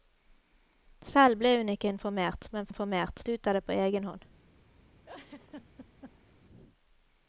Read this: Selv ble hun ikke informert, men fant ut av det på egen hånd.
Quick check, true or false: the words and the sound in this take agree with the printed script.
false